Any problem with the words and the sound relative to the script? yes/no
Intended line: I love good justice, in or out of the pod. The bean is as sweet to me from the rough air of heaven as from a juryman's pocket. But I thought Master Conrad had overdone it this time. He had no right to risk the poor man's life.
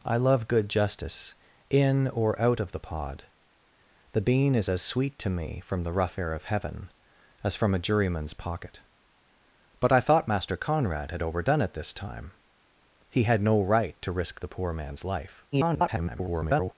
yes